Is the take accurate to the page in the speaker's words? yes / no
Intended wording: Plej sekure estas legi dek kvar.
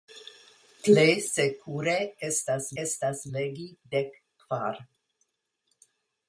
no